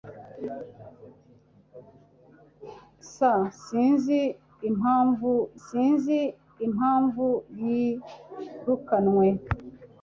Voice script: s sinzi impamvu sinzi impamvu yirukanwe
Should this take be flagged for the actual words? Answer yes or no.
no